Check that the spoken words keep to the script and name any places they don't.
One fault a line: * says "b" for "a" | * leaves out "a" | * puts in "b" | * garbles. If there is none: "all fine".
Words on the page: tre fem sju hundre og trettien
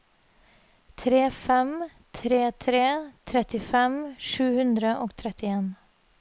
* puts in "tre tre trettifem"